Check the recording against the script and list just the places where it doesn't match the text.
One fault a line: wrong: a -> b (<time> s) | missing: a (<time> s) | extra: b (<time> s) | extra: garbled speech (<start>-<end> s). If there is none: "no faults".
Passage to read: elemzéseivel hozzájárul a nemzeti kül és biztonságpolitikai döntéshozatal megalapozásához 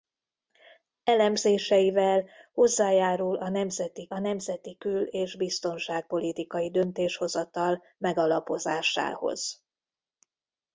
extra: a nemzeti (4.1 s)